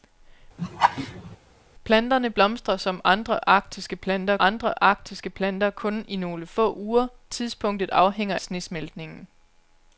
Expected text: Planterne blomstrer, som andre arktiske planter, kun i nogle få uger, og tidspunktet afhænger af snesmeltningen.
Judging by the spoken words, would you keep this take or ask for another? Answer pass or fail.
fail